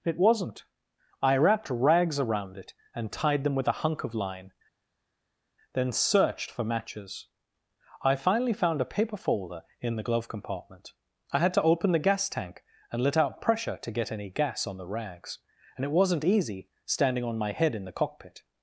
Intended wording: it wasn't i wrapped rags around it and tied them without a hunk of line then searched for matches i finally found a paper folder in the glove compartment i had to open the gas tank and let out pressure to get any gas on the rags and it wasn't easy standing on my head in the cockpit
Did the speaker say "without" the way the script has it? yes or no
no